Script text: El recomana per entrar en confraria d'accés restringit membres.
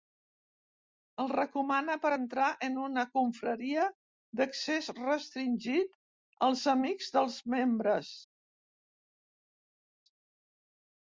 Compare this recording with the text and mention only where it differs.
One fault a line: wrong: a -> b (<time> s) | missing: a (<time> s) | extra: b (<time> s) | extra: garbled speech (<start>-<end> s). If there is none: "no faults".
extra: una (2.9 s)
extra: als amics dels (6.5 s)